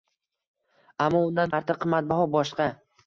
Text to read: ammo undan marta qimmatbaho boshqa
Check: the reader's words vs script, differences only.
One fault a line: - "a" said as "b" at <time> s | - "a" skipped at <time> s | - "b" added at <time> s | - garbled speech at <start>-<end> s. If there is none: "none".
none